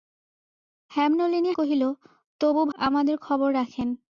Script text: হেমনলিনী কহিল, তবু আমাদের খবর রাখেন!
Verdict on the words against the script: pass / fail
pass